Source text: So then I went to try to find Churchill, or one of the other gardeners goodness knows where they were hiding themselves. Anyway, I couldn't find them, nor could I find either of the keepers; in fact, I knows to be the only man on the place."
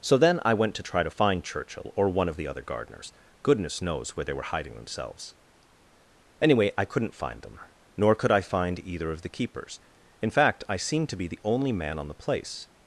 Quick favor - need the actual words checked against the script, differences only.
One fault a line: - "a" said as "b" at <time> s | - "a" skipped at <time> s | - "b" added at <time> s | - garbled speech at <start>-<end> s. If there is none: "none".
- "knows" said as "seemed" at 10.8 s